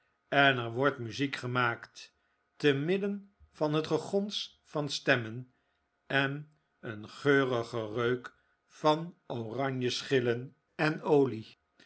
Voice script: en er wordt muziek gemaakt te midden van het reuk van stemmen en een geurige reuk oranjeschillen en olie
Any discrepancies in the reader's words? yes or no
yes